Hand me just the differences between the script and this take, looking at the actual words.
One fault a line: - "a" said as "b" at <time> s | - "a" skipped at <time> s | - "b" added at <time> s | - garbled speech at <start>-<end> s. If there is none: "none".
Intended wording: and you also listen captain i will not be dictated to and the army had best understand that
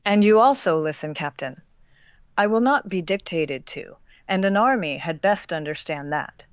- "the" said as "an" at 4.4 s